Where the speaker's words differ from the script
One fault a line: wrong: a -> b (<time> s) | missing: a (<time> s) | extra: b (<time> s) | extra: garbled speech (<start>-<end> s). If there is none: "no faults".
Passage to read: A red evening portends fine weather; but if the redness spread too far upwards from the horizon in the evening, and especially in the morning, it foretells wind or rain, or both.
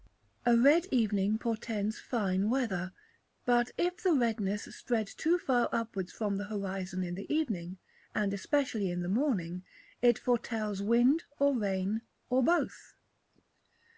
no faults